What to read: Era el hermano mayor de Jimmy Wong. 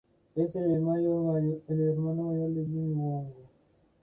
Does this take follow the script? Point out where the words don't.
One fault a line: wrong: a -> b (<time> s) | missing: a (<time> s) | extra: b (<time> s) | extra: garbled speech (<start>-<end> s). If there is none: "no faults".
wrong: Era -> Es (0.3 s)